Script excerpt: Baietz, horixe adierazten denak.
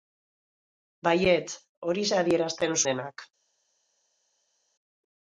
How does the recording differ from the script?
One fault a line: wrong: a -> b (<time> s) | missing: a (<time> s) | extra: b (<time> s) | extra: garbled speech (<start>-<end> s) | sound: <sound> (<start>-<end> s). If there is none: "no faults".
no faults